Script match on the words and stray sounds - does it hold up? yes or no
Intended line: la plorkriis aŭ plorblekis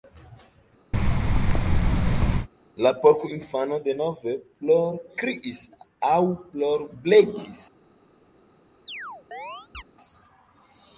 no